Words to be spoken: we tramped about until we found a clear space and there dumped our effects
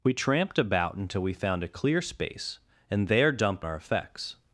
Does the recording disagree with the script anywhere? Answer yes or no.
no